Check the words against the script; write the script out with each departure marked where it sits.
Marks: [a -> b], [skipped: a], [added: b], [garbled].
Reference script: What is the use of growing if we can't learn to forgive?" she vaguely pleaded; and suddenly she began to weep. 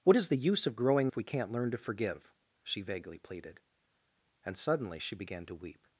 What is the use of growing if we can't learn to forgive?" she vaguely pleaded; and suddenly she began to weep.